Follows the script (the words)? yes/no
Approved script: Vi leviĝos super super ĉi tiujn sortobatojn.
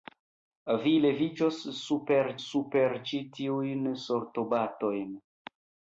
yes